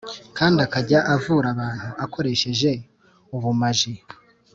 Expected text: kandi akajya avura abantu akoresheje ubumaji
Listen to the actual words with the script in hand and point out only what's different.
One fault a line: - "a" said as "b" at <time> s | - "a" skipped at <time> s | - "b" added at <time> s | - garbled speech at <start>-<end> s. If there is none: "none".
none